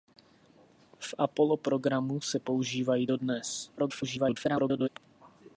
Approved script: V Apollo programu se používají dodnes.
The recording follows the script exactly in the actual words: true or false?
false